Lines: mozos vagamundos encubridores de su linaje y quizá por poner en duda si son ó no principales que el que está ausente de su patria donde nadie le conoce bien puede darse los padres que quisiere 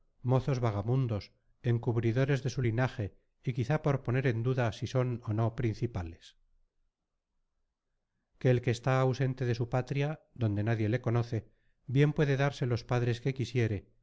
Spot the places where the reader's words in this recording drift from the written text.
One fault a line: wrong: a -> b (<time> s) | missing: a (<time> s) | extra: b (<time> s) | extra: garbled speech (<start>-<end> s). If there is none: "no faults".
no faults